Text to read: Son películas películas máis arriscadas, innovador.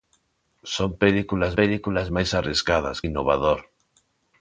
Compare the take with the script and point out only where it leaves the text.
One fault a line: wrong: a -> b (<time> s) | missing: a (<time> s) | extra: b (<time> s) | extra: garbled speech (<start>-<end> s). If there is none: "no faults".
no faults